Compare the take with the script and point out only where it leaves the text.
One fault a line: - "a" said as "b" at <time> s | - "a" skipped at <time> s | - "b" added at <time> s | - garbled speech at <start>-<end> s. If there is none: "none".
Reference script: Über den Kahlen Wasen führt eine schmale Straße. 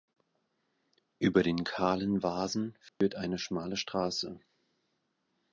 none